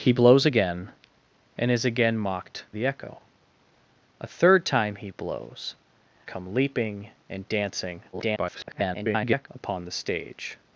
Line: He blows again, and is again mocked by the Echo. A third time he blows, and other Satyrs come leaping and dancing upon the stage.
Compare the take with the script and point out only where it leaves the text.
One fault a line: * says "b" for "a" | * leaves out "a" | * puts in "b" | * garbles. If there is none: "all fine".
* leaves out "by"
* leaves out "and other Satyrs"
* garbles